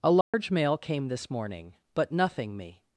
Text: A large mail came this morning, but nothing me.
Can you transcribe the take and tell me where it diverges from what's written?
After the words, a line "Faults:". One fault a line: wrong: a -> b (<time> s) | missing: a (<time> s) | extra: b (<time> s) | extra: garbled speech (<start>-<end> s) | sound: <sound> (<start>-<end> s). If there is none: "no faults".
A large mail came this morning, but nothing me.
Faults:
sound: dropout (0.2-0.3 s)